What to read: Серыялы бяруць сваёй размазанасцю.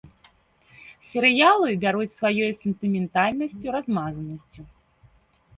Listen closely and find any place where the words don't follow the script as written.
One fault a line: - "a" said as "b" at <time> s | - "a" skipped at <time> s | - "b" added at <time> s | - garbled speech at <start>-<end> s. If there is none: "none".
- "сентыментальнасцю" added at 2.6 s